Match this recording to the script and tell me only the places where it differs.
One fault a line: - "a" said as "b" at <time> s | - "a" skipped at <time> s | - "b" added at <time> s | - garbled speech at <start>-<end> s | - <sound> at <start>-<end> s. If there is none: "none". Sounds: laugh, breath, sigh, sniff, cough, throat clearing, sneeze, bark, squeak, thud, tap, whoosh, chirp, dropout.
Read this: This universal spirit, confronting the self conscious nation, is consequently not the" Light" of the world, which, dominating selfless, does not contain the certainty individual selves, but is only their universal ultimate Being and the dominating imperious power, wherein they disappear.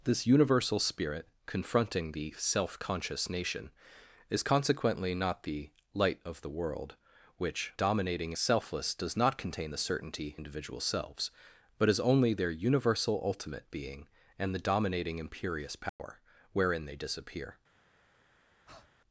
- dropout at 15.9-16.0 s
- breath at 18.7-18.9 s